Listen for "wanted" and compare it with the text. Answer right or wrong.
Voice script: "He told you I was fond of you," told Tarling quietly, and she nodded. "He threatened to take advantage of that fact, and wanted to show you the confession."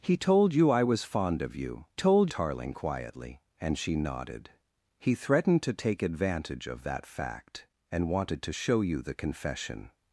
right